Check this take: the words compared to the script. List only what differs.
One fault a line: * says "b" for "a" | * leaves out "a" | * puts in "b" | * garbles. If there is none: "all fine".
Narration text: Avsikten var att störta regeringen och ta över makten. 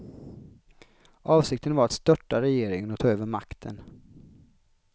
all fine